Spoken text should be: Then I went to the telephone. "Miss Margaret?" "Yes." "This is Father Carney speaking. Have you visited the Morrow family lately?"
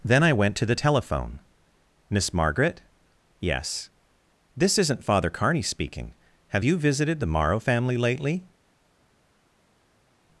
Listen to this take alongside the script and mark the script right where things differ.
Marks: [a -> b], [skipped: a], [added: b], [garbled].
Then I went to the telephone. "Miss Margaret?" "Yes." "This [is -> isn't] Father Carney speaking. Have you visited the Morrow family lately?"